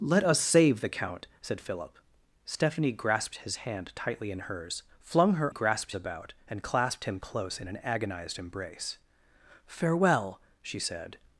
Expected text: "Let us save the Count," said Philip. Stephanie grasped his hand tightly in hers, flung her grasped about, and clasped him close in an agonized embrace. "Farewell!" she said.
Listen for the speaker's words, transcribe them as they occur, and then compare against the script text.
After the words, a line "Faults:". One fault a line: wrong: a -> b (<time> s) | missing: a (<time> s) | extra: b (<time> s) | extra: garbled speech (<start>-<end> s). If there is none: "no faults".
"Let us save the Count," said Philip. Stephanie grasped his hand tightly in hers, flung her grasped about, and clasped him close in an agonized embrace. "Farewell!" she said.
Faults:
no faults